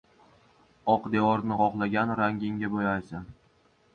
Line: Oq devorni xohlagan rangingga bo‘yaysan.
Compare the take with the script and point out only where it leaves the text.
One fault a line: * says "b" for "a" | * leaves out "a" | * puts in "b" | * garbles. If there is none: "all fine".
all fine